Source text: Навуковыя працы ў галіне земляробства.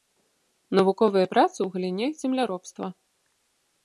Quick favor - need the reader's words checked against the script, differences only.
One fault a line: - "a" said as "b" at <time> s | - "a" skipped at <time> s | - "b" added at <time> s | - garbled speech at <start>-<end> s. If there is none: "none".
none